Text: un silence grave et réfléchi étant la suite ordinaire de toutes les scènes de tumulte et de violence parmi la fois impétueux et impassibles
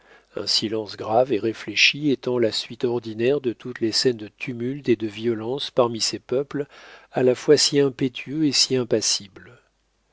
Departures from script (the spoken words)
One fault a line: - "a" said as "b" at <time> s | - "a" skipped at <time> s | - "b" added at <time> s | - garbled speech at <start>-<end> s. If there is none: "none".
- "ces peuples à" added at 6.0 s
- "si" added at 7.6 s
- "si" added at 8.5 s